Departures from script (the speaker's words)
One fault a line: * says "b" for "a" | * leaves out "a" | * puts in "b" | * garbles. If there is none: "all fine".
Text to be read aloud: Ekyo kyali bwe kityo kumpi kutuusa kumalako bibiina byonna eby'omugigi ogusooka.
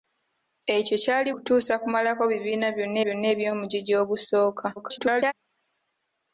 * leaves out "bwe kityo kumpi"
* puts in "byonna"
* garbles